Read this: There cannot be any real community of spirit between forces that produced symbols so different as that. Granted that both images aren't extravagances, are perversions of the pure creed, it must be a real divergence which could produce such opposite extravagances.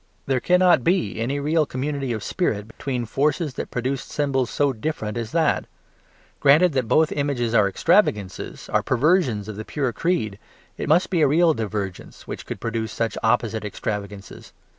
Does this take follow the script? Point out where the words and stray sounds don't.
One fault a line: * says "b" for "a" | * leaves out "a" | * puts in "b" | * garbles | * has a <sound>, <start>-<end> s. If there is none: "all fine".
* has a dropout, 2.7-2.8 s
* says "are" for "aren't"